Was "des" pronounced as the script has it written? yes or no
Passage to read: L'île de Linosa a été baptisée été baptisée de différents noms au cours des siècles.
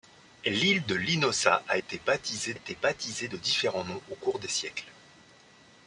yes